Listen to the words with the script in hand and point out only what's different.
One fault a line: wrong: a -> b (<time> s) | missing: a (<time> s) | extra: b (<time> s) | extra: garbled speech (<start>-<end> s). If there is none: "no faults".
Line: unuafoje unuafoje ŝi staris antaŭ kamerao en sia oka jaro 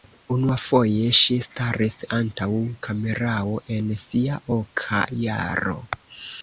missing: unuafoje (1.1 s)